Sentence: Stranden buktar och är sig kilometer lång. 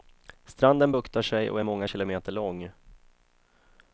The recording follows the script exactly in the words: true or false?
false